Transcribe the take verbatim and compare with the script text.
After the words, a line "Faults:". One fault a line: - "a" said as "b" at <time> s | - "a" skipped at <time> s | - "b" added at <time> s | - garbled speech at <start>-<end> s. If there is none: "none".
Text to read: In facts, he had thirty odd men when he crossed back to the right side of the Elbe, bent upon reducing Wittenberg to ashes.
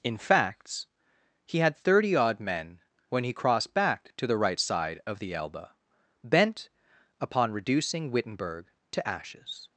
In facts, he had thirty odd men when he crossed back to the right side of the Elbe, bent upon reducing Wittenberg to ashes.
Faults:
none